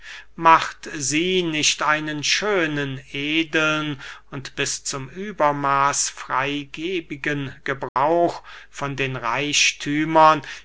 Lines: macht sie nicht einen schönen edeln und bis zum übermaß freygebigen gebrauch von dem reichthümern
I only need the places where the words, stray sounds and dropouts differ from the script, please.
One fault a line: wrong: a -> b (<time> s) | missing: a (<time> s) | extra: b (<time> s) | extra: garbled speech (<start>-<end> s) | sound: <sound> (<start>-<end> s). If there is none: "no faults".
sound: dropout (7.9-8.0 s)
wrong: dem -> den (8.9 s)